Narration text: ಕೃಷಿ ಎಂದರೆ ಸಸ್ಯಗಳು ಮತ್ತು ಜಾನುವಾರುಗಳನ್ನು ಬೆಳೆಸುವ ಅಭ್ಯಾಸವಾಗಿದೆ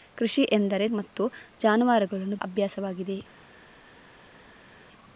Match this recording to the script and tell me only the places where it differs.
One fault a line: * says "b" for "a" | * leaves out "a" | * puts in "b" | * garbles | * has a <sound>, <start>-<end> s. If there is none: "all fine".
* leaves out "ಸಸ್ಯಗಳು"
* leaves out "ಬೆಳೆಸುವ"